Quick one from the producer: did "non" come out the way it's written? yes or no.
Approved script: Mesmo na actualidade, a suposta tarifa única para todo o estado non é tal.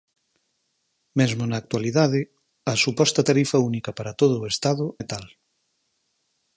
no